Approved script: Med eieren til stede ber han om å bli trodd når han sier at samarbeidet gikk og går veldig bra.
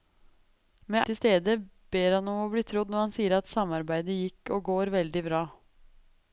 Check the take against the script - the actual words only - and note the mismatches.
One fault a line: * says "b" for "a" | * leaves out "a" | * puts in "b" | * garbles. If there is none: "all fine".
* leaves out "eieren"